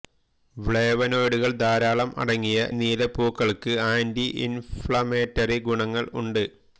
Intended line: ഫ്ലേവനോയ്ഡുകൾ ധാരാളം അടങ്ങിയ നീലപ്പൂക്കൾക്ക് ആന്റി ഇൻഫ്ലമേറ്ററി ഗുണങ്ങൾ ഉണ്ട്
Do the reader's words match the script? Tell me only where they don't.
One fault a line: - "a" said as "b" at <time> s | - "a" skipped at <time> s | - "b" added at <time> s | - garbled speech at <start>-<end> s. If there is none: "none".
none